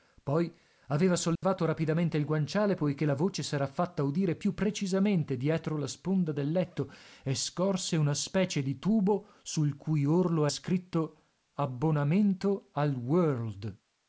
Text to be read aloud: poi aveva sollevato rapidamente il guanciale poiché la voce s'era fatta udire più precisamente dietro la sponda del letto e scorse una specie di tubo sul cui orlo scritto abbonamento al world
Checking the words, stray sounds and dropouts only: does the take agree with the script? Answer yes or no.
no